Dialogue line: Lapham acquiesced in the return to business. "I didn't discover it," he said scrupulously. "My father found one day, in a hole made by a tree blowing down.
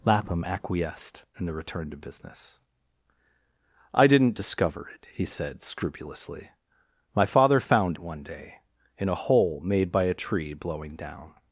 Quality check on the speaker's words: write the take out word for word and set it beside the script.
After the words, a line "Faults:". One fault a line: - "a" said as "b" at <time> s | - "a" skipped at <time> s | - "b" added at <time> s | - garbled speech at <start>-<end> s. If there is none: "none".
Lapham acquiesced in the return to business. "I didn't discover it," he said scrupulously. "My father found one day, in a hole made by a tree blowing down.
Faults:
none